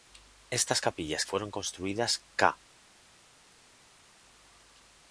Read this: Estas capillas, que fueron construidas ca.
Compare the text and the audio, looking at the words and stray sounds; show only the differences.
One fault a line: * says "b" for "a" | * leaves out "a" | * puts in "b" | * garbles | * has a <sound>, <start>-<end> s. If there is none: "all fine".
* leaves out "que"